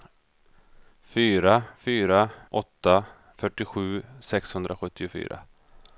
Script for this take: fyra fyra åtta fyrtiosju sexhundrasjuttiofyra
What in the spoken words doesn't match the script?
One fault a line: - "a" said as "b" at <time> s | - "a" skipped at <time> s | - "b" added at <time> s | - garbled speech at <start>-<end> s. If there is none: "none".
none